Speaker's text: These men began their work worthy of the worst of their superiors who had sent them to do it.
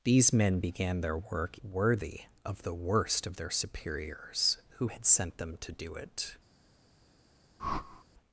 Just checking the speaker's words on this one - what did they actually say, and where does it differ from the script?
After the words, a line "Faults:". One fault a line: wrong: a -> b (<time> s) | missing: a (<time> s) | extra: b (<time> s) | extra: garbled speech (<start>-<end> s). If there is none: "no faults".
These men began their work worthy of the worst of their superiors who had sent them to do it.
Faults:
no faults